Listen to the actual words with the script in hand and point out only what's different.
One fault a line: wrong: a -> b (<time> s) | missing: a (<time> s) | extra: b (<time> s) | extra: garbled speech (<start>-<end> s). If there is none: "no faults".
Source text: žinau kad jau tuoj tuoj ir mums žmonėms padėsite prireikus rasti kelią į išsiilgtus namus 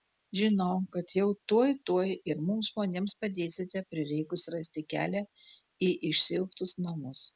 no faults